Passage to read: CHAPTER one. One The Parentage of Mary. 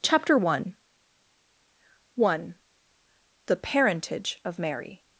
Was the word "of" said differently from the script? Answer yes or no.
no